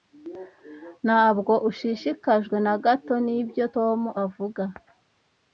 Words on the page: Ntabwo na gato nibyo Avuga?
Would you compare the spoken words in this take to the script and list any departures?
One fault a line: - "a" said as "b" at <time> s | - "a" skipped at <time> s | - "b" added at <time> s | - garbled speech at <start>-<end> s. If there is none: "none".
- "ushishikajwe" added at 1.7 s
- "Tom" added at 3.7 s